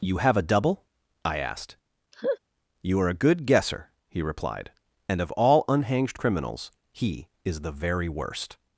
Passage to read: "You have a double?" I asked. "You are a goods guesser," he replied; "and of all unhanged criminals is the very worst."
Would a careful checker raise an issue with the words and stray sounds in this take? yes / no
yes